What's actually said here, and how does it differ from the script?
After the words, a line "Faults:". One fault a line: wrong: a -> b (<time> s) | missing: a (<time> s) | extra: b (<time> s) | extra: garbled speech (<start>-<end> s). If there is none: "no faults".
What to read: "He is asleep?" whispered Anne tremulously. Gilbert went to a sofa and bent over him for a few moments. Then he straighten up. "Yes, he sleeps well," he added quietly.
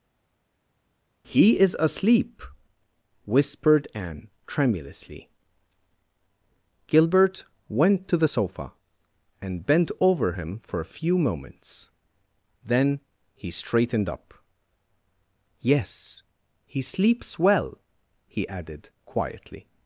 "He is asleep?" whispered Anne tremulously. Gilbert went to the sofa and bent over him for a few moments. Then he straightened up. "Yes, he sleeps well," he added quietly.
Faults:
wrong: a -> the (8.2 s)
wrong: straighten -> straightened (13.5 s)